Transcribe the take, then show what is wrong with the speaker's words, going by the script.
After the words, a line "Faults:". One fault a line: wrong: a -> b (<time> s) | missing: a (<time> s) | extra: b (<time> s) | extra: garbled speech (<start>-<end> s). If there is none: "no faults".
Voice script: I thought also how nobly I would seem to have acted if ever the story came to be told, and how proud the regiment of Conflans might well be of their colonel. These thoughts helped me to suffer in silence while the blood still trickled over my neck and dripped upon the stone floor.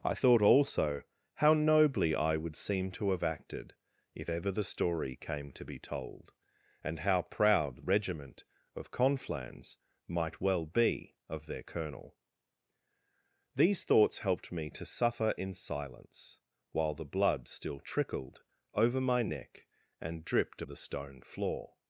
I thought also how nobly I would seem to have acted if ever the story came to be told, and how proud regiment of Conflans might well be of their colonel. These thoughts helped me to suffer in silence while the blood still trickled over my neck and dripped the stone floor.
Faults:
missing: the (7.8 s)
missing: upon (20.6 s)